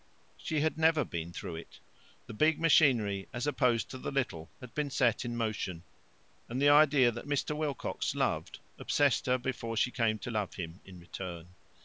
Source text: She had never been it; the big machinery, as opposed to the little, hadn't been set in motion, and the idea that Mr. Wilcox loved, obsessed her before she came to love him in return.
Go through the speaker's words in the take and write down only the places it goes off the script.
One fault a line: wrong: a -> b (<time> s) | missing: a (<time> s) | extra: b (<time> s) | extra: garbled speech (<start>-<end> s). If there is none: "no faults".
extra: through (1.3 s)
wrong: hadn't -> had (4.6 s)